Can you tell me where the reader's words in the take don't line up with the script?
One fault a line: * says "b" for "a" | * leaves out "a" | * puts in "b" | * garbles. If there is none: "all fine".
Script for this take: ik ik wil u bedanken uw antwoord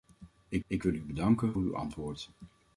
all fine